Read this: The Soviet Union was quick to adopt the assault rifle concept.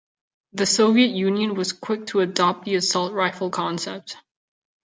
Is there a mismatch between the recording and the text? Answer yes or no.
no